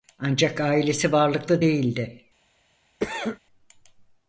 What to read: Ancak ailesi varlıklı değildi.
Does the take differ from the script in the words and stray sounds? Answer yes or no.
yes